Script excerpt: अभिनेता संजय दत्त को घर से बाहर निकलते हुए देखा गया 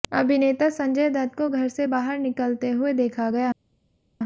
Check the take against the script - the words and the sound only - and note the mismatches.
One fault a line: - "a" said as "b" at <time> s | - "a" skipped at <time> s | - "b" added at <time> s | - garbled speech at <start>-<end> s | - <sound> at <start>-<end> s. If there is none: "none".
none